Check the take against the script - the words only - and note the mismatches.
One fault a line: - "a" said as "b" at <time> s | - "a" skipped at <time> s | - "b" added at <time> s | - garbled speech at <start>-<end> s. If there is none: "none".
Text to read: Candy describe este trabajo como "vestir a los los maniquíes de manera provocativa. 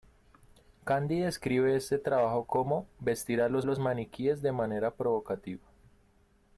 none